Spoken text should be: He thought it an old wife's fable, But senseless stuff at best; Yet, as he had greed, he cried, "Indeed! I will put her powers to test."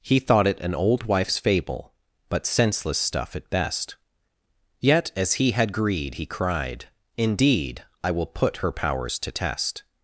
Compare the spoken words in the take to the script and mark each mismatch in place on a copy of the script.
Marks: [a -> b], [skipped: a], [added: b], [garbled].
He thought it an old wife's fable, But senseless stuff at best; Yet, as he had greed, he cried, "Indeed! I will put her powers to test."